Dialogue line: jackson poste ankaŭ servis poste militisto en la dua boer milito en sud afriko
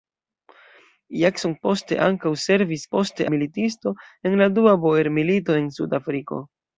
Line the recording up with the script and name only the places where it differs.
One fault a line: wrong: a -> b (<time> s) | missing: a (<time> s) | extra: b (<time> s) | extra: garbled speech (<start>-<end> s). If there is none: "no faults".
no faults